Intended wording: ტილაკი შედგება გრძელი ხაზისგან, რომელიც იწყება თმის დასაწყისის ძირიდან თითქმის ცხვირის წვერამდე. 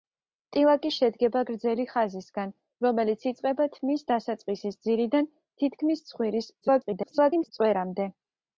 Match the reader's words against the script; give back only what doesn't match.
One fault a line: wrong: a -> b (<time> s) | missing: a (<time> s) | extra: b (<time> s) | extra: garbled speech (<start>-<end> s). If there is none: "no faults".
extra: garbled speech (6.6-7.5 s)